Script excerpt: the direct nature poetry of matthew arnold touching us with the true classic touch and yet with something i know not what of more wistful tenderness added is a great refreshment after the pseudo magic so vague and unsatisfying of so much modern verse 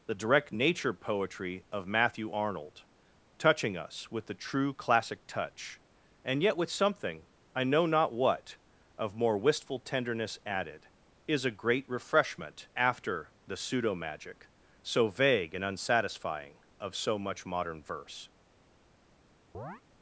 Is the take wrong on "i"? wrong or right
right